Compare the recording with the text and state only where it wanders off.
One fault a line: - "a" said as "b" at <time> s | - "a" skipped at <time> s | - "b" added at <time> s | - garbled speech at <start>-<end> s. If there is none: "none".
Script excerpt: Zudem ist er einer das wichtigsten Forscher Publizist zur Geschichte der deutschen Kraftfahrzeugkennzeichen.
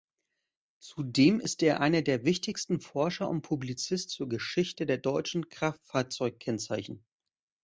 - "das" said as "der" at 2.0 s
- "und" added at 3.3 s